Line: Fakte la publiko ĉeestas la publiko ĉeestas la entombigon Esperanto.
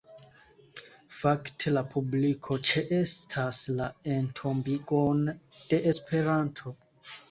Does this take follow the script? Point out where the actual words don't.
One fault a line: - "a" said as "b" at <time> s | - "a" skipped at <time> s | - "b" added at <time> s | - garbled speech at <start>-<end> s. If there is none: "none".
- "publiko ĉeestas la entombigon" said as "entombigon de" at 4.2 s